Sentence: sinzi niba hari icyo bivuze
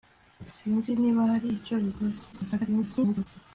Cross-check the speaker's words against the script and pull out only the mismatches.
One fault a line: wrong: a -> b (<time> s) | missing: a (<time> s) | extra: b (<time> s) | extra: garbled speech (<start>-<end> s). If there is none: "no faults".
extra: garbled speech (2.3-3.3 s)